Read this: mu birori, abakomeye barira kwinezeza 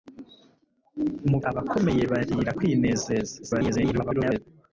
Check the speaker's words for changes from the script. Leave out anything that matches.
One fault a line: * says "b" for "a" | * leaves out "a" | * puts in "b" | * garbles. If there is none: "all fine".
* leaves out "birori"
* garbles